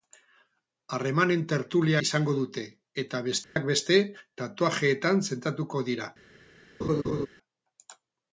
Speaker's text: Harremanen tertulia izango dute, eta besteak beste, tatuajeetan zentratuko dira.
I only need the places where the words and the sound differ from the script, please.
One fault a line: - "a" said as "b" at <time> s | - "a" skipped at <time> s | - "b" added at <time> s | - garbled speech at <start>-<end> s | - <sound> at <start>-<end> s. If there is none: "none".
- dropout at 3.4-3.6 s
- laugh at 6.8-7.3 s